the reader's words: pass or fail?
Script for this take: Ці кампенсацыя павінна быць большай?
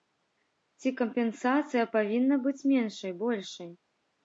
fail